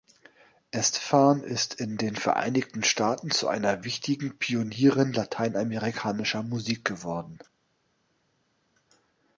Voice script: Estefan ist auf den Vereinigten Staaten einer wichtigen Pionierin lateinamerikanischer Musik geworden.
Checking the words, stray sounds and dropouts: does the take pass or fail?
fail